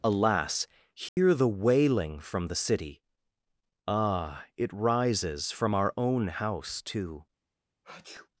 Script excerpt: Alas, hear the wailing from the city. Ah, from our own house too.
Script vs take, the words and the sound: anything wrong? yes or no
yes